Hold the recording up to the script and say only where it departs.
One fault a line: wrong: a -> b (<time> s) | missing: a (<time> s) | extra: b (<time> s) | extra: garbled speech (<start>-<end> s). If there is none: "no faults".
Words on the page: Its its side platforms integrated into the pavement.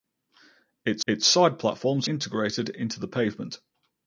no faults